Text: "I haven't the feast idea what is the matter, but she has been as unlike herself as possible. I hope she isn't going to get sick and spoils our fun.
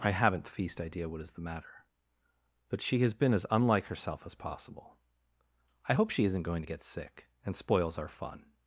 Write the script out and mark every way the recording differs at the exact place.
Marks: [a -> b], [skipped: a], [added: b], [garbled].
"I haven't the feast idea what is the matter, but she has been as unlike herself as possible. I hope she isn't going to get sick and spoils our fun.